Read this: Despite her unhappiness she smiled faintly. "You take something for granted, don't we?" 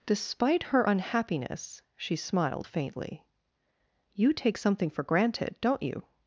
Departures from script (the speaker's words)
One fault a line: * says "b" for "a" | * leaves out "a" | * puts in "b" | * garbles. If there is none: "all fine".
* says "you" for "we"